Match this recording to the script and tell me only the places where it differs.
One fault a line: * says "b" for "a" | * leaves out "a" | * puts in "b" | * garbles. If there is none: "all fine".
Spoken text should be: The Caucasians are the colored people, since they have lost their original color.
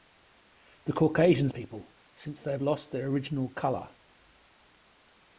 * leaves out "are the colored"